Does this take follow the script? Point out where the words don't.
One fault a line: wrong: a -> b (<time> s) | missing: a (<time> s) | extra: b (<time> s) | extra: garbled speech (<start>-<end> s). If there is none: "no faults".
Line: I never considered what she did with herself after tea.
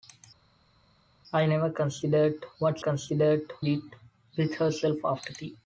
wrong: she -> considered (2.8 s)